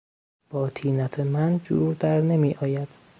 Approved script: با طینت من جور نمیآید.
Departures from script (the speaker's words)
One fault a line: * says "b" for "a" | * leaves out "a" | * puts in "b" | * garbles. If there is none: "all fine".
* puts in "در"